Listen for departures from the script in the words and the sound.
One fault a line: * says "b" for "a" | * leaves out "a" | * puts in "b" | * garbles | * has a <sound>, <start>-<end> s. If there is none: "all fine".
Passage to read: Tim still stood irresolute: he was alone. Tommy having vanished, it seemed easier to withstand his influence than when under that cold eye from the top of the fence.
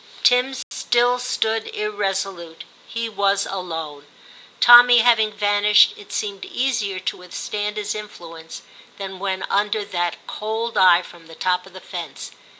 * has a dropout, 0.6-0.7 s